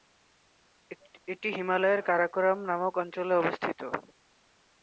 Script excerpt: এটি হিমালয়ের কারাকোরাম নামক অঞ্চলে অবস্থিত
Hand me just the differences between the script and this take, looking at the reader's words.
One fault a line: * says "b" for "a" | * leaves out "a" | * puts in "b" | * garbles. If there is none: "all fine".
all fine